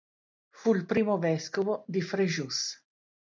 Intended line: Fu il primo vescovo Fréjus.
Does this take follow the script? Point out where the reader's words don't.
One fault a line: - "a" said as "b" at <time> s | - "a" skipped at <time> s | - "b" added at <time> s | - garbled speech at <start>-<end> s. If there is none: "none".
- "di" added at 1.9 s